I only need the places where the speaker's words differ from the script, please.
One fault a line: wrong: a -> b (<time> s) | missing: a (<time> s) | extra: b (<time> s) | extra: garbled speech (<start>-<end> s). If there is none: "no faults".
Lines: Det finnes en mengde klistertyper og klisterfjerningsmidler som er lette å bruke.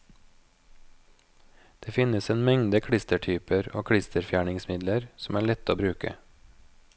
no faults